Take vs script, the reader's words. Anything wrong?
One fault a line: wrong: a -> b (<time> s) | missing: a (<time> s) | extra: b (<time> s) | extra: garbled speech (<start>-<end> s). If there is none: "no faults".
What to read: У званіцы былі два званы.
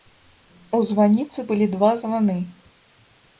no faults